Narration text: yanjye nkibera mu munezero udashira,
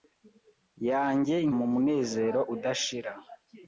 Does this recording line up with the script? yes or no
no